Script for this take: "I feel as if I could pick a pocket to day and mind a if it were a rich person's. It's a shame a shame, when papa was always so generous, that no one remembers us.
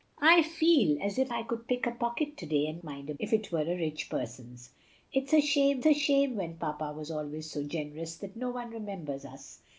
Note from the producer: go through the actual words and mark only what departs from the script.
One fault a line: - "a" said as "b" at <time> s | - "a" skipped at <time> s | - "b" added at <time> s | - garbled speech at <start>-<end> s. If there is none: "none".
none